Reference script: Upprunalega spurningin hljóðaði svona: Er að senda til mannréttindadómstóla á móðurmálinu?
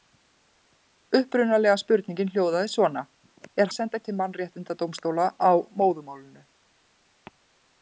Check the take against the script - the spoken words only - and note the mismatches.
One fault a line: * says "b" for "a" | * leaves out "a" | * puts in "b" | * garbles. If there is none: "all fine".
all fine